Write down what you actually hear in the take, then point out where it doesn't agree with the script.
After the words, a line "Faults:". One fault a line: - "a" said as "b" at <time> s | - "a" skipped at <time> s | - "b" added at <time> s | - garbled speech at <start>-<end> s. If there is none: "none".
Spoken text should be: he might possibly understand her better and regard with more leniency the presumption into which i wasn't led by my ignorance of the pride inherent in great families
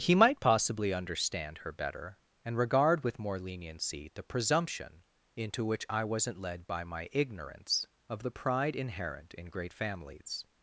he might possibly understand her better and regard with more leniency the presumption into which i wasn't led by my ignorance of the pride inherent in great families
Faults:
none